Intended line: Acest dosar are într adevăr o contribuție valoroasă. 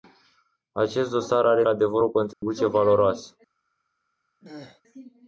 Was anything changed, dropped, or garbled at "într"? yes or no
yes